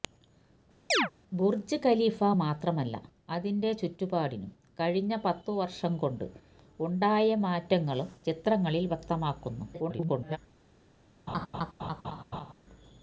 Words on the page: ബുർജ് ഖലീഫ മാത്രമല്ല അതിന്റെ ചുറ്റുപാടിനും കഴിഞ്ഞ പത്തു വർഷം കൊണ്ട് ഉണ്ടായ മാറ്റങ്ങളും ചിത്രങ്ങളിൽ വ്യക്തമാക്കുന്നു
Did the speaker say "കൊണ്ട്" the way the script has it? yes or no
yes